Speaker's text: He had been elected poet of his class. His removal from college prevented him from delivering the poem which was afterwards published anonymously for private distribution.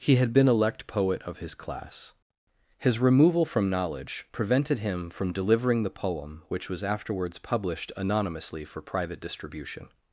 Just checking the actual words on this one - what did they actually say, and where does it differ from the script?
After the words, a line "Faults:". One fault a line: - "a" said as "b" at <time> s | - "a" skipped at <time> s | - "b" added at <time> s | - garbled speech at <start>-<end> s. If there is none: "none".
He had been elect poet of his class. His removal from knowledge prevented him from delivering the poem which was afterwards published anonymously for private distribution.
Faults:
- "elected" said as "elect" at 0.5 s
- "college" said as "knowledge" at 3.7 s